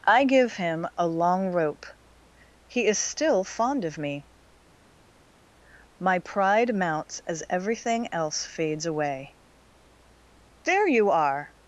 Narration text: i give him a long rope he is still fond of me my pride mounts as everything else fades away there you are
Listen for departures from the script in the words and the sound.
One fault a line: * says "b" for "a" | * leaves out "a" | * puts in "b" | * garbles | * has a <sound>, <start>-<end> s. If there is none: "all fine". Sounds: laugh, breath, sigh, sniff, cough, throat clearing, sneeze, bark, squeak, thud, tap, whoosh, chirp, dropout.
all fine